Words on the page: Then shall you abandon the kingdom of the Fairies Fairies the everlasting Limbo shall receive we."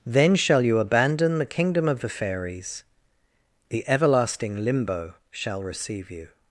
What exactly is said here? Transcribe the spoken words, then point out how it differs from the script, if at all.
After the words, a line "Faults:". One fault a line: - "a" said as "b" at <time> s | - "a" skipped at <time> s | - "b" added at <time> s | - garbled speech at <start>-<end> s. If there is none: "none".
Then shall you abandon the kingdom of the Fairies the everlasting Limbo shall receive you."
Faults:
- "Fairies" skipped at 2.8 s
- "we" said as "you" at 6.1 s